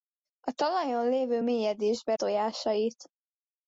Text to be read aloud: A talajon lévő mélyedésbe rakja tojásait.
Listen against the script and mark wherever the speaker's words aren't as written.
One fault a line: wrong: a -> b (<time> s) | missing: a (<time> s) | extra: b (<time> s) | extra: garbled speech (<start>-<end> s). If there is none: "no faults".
missing: rakja (2.1 s)